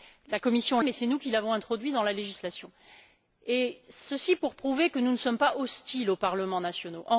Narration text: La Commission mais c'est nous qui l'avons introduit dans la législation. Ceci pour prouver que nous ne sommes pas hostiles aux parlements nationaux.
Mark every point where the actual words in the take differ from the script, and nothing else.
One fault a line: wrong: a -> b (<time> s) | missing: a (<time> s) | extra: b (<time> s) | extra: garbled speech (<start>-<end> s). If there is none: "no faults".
no faults